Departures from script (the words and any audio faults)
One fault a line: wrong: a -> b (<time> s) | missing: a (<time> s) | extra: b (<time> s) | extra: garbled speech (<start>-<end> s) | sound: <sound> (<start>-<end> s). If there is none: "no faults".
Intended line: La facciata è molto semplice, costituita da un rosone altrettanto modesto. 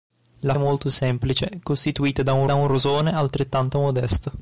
missing: facciata (0.6 s)
extra: da un (2.4 s)